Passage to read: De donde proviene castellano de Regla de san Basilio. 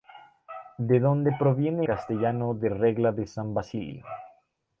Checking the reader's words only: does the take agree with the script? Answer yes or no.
yes